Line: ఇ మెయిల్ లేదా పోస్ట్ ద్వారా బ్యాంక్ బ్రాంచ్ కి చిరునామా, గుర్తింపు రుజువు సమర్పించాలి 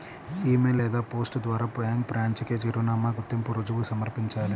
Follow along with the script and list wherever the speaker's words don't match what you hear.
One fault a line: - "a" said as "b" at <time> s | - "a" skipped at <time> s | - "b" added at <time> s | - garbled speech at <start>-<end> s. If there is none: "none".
none